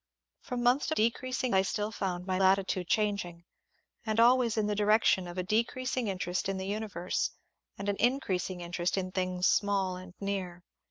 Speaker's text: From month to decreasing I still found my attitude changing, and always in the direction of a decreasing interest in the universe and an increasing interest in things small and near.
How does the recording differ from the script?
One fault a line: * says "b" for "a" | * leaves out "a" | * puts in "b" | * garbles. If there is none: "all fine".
all fine